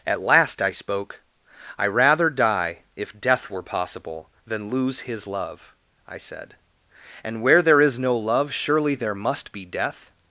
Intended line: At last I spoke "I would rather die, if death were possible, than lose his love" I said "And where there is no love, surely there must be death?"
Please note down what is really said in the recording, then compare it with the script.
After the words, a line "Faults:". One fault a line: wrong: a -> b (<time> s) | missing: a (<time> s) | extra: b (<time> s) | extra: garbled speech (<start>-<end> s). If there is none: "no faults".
At last I spoke "I rather die, if death were possible, than lose his love" I said "And where there is no love, surely there must be death?"
Faults:
missing: would (1.9 s)